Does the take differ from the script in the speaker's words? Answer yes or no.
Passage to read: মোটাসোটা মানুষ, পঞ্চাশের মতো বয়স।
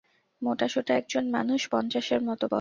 yes